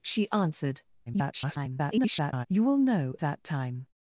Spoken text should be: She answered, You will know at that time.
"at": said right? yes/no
no